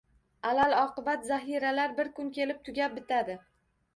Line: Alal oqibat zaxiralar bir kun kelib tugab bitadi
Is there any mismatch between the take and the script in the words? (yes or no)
no